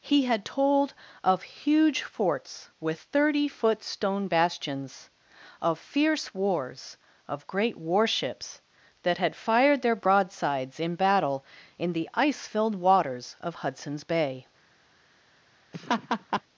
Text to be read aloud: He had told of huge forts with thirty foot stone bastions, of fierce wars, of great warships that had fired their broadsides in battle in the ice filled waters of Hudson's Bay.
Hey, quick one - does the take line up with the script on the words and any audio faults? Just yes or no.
no